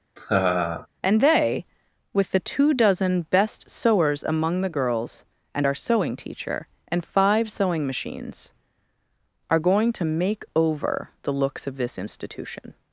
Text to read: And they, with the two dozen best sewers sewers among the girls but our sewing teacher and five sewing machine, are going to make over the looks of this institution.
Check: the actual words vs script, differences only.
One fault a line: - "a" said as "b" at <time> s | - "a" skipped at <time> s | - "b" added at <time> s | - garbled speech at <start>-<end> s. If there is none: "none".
- "sewers" skipped at 4.2 s
- "but" said as "and" at 5.5 s
- "machine" said as "machines" at 7.9 s